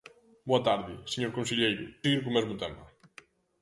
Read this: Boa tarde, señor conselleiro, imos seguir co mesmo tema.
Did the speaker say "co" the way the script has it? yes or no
yes